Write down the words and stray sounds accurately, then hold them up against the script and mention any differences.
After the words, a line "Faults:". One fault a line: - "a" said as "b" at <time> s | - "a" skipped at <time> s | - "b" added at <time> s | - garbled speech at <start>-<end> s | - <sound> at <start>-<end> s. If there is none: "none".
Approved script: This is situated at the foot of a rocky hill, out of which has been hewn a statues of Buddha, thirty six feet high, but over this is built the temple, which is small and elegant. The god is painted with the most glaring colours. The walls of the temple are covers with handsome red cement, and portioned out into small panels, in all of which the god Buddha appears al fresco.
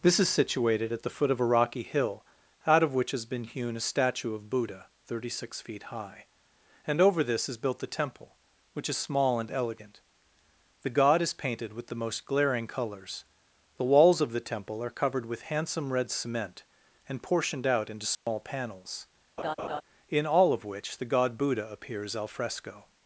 This is situated at the foot of a rocky hill, out of which has been hewn a statue of Buddha, thirty six feet high, and over this is built the temple, which is small and elegant. The god is painted with the most glaring colours. The walls of the temple are covered with handsome red cement, and portioned out into small panels, in all of which the god Buddha appears al fresco.
Faults:
- "statues" said as "statue" at 3.8 s
- "but" said as "and" at 6.9 s
- "covers" said as "covered" at 14.9 s
- dropout at 18.1-18.3 s
- laugh at 19.4-19.8 s